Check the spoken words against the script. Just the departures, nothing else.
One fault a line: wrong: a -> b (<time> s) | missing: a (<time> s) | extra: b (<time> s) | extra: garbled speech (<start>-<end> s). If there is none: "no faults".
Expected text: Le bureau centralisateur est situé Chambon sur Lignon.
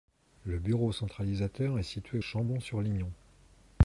no faults